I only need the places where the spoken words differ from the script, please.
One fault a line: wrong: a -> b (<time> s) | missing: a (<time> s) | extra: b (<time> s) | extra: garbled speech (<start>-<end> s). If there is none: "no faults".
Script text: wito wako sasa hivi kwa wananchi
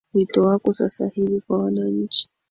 no faults